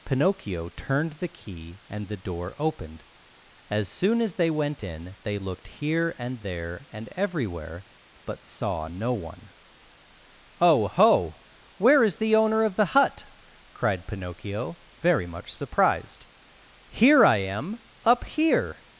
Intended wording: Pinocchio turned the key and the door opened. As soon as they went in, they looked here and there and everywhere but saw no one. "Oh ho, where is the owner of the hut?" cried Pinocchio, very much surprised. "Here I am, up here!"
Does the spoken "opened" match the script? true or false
true